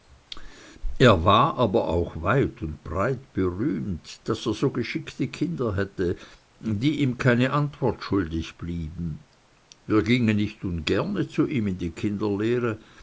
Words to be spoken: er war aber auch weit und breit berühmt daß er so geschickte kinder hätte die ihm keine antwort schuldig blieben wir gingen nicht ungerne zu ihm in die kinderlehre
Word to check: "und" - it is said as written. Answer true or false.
true